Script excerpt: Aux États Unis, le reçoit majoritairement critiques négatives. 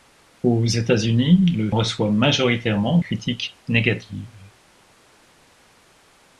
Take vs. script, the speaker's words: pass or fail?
pass